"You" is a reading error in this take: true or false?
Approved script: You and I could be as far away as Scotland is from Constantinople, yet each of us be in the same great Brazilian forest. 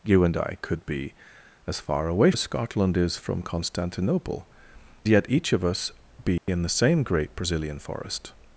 false